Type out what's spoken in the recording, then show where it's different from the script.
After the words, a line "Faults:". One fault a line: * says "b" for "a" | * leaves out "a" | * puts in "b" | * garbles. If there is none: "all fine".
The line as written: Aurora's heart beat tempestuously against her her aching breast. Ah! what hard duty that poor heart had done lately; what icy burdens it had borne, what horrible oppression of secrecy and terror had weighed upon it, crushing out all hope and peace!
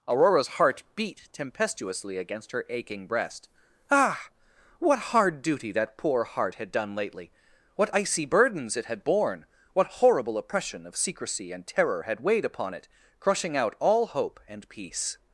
Aurora's heart beat tempestuously against her aching breast. Ah! what hard duty that poor heart had done lately; what icy burdens it had borne, what horrible oppression of secrecy and terror had weighed upon it, crushing out all hope and peace!
Faults:
* leaves out "her"